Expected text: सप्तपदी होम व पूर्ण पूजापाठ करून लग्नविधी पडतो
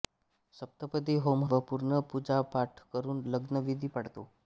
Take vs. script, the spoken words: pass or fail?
pass